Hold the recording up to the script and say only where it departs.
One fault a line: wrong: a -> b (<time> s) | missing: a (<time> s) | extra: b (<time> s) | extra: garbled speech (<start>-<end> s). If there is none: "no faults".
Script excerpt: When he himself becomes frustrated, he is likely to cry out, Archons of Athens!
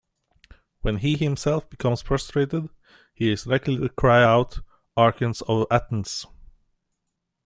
no faults